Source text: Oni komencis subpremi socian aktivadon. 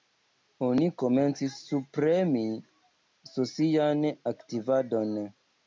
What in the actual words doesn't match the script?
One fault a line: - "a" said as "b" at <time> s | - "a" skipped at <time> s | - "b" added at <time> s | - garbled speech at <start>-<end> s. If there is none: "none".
none